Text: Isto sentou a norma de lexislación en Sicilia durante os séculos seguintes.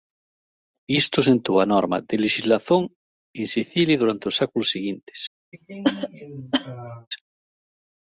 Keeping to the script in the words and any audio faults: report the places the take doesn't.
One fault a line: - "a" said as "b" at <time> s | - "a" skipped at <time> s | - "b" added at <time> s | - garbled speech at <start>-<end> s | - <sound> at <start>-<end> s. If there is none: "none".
- cough at 5.5-7.1 s